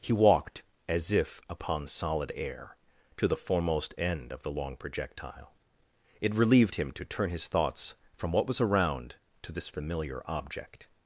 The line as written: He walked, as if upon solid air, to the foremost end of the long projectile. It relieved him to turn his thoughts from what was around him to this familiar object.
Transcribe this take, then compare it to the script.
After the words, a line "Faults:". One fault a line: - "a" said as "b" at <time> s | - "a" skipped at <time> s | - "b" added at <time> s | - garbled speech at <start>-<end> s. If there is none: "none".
He walked, as if upon solid air, to the foremost end of the long projectile. It relieved him to turn his thoughts from what was around to this familiar object.
Faults:
- "him" skipped at 9.2 s